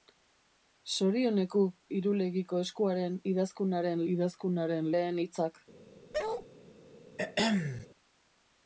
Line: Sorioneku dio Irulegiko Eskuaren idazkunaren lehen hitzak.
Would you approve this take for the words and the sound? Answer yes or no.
no